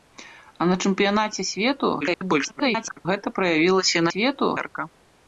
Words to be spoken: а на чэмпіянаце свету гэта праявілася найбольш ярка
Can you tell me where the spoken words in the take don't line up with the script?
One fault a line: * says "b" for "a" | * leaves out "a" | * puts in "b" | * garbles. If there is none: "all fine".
* garbles
* says "свету" for "найбольш"